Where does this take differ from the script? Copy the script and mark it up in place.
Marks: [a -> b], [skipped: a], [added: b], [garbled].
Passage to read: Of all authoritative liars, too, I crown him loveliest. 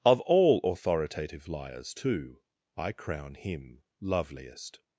Of all authoritative liars, too, I crown him loveliest.